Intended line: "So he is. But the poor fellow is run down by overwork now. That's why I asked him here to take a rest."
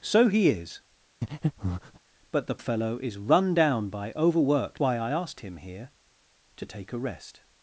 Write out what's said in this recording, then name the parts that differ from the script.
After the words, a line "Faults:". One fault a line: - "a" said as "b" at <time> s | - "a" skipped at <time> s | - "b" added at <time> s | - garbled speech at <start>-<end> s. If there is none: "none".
"So he is. But the fellow is run down by overwork why I asked him here to take a rest."
Faults:
- "poor" skipped at 2.6 s
- "now That's" skipped at 4.8 s